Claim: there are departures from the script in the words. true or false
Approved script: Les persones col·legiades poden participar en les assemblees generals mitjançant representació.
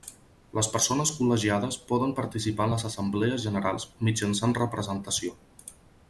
false